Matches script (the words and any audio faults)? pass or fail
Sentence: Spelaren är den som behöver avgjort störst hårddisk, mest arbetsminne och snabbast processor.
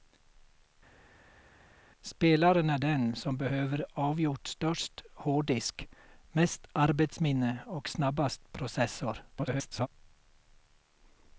fail